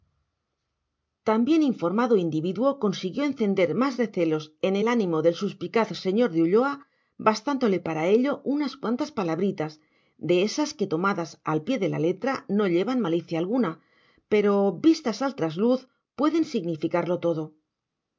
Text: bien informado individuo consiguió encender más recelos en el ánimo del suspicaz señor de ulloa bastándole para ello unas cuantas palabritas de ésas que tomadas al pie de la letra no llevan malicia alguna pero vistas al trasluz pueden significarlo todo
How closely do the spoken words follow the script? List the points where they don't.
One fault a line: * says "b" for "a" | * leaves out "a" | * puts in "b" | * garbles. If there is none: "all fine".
all fine